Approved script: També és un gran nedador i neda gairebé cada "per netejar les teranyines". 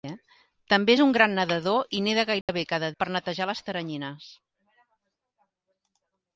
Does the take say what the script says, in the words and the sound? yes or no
no